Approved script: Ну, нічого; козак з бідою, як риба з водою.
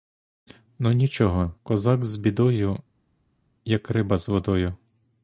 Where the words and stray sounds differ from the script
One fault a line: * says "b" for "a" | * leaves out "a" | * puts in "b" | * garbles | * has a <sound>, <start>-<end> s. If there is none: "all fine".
all fine